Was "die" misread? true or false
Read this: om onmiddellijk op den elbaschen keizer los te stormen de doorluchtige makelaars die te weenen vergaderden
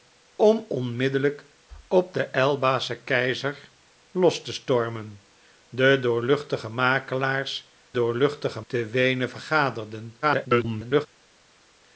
true